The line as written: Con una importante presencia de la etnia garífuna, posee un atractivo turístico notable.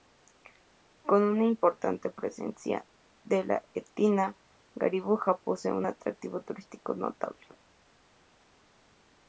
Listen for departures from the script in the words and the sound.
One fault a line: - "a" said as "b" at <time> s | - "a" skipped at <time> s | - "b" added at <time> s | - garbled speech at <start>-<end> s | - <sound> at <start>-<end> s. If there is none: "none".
none